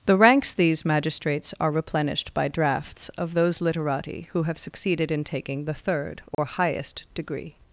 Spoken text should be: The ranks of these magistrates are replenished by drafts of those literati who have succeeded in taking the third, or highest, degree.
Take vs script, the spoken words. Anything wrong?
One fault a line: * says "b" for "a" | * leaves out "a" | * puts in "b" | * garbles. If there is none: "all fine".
* leaves out "of"